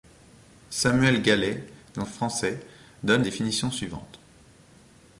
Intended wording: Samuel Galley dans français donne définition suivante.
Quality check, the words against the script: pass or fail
pass